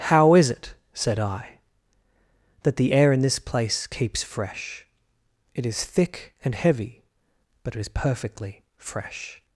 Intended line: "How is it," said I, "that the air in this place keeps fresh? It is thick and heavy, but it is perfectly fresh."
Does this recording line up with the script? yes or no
yes